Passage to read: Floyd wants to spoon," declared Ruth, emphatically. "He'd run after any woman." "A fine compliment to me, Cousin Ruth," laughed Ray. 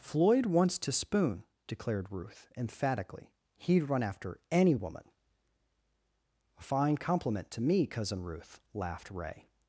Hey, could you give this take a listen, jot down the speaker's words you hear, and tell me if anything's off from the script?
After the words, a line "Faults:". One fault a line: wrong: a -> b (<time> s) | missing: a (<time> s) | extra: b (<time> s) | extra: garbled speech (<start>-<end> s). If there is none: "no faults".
Floyd wants to spoon," declared Ruth, emphatically. "He'd run after any woman." "A fine compliment to me, Cousin Ruth," laughed Ray.
Faults:
no faults